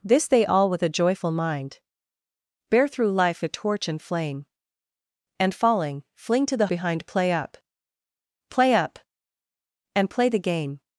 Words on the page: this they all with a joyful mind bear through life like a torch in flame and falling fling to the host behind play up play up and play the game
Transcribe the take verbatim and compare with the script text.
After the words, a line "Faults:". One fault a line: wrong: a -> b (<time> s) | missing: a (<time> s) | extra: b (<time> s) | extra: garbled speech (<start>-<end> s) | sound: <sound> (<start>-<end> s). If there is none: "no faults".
this they all with a joyful mind bear through life a torch in flame and falling fling to the behind play up play up and play the game
Faults:
missing: like (3.4 s)
missing: host (6.7 s)